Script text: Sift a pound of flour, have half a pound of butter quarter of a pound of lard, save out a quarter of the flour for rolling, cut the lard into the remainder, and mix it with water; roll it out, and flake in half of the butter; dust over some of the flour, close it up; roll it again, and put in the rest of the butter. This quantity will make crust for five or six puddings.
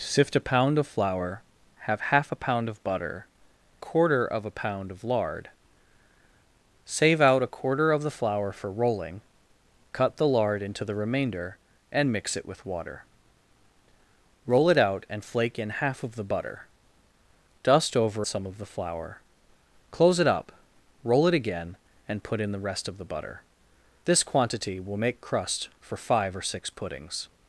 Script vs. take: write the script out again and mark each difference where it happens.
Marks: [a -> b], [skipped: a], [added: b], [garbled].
Sift a pound of flour, have half a pound of butter quarter of a pound of lard, save out a quarter of the flour for rolling, cut the lard into the remainder, and mix it with water; roll it out, and flake in half of the butter; dust over some of the flour, close it up; roll it again, and put in the rest of the butter. This quantity will make crust for five or six puddings.